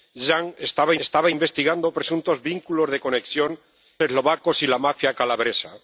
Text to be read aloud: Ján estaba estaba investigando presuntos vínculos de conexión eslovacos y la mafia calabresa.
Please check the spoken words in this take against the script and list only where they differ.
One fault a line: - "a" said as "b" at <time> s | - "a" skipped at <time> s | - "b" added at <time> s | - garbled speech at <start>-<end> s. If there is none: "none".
none